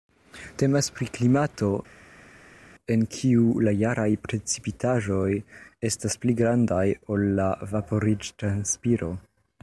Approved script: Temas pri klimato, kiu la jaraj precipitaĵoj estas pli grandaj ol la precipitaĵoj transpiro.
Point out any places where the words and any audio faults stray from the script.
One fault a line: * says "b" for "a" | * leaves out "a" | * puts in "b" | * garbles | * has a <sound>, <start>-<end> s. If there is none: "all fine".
* puts in "en"
* says "vaporiĝ" for "precipitaĵoj"